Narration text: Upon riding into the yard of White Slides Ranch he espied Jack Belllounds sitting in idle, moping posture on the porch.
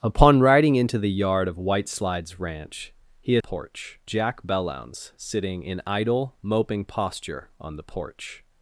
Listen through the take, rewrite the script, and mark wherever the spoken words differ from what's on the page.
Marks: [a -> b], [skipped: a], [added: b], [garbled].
Upon riding into the yard of White Slides Ranch he [espied -> porch] Jack Belllounds sitting in idle, moping posture on the porch.